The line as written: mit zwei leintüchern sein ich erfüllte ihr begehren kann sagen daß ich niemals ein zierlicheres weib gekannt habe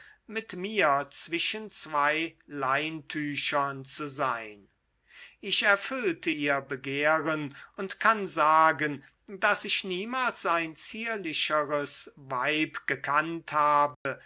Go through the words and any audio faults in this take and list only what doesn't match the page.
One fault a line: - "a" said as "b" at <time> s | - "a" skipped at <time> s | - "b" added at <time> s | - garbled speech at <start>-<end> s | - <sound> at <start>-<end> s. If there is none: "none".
- "mir zwischen" added at 0.6 s
- "zu" added at 3.9 s
- "und" added at 7.8 s
- dropout at 13.9-14.1 s